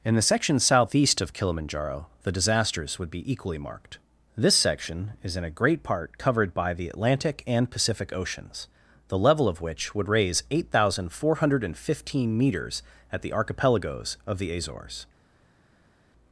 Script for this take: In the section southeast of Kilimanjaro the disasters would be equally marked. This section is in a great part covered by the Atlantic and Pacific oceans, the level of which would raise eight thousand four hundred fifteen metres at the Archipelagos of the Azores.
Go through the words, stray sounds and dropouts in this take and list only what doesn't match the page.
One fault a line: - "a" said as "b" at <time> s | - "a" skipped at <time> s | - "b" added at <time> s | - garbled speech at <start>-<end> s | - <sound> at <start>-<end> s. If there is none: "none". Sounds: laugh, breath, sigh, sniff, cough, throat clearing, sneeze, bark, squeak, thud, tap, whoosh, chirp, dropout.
none